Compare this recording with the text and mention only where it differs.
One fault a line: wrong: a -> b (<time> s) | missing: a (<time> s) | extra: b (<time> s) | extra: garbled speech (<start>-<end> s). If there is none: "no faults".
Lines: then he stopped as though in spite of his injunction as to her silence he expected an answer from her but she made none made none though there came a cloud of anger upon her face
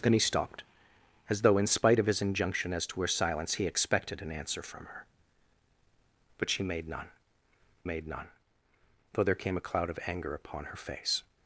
no faults